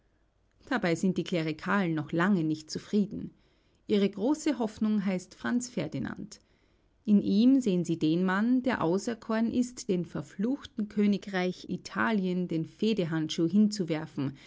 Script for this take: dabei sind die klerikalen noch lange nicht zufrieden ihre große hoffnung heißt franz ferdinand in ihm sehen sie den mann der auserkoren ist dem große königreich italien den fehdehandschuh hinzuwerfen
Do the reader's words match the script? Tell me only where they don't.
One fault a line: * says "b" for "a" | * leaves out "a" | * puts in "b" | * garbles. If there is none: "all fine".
* says "verfluchten" for "große"